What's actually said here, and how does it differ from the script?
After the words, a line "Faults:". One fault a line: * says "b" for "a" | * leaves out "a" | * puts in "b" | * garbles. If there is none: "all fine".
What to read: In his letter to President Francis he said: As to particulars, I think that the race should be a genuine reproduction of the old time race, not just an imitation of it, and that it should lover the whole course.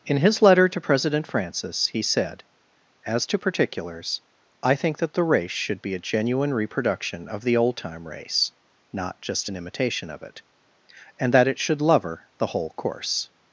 In his letter to President Francis he said: As to particulars, I think that the race should be a genuine reproduction of the old time race, not just an imitation of it, and that it should lover the whole course.
Faults:
all fine